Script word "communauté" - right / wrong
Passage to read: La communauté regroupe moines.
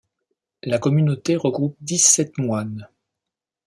right